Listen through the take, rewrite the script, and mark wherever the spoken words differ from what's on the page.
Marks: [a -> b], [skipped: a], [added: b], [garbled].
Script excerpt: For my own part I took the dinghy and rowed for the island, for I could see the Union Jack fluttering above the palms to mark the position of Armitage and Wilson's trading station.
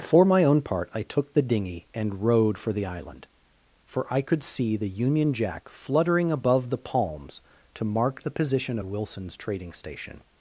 For my own part I took the dinghy and rowed for the island, for I could see the Union Jack fluttering above the palms to mark the position [skipped: of Armitage and] Wilson's trading station.